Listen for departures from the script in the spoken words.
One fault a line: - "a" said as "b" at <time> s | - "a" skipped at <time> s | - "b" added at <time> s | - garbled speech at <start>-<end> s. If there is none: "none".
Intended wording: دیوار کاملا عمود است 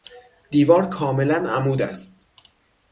none